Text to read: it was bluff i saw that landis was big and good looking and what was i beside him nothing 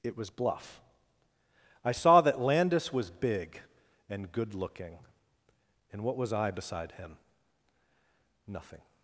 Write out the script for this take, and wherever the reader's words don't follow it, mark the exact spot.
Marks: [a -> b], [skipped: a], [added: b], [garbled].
it was bluff i saw that landis was big and good looking and what was i beside him nothing